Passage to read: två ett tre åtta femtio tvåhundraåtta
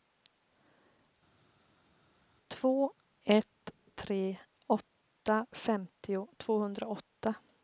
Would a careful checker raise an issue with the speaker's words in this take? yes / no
no